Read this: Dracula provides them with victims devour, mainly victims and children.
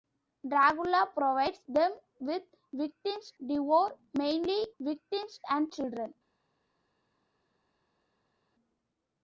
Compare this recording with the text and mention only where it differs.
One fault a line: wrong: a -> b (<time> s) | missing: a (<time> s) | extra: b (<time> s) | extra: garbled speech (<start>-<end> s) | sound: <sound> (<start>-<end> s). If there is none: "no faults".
no faults